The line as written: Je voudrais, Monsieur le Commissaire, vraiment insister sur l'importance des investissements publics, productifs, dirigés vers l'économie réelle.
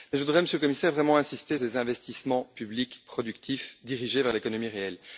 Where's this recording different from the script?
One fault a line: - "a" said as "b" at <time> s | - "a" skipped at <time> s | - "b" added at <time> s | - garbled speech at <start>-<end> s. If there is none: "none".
- "sur l'importance" skipped at 1.6 s